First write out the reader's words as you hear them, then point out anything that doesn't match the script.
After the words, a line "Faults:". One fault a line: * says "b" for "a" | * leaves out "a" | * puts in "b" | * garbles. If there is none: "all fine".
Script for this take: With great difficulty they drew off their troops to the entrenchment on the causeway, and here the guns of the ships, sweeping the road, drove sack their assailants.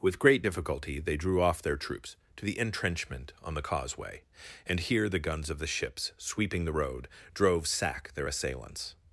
With great difficulty they drew off their troops to the entrenchment on the causeway, and here the guns of the ships, sweeping the road, drove sack their assailants.
Faults:
all fine